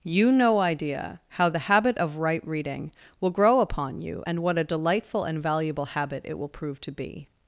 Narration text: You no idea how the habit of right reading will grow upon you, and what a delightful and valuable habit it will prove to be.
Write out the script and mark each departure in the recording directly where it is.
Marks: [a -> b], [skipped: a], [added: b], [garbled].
You no idea how the habit of right reading will grow upon you, and what a delightful and valuable habit it will prove to be.